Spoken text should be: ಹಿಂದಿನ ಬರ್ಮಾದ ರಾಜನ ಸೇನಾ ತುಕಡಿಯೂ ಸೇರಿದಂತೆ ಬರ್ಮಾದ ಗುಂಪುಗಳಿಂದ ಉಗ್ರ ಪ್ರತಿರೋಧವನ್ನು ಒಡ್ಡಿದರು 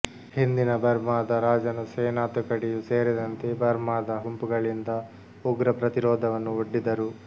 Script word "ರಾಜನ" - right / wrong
right